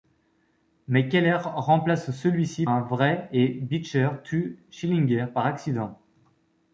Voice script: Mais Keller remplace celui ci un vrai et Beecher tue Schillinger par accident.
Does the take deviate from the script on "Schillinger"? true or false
false